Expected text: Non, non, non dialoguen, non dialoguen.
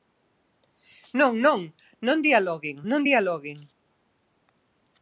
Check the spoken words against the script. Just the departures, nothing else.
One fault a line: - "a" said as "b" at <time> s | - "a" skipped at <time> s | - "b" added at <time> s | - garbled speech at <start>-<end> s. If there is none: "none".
none